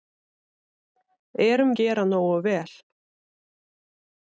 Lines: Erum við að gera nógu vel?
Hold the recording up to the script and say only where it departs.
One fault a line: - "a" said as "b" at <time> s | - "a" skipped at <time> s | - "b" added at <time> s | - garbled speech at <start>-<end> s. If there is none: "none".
- "við að" skipped at 1.8 s